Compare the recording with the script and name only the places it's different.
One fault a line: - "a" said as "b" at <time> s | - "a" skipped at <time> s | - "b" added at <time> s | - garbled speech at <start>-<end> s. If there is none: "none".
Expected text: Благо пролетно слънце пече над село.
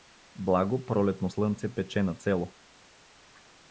none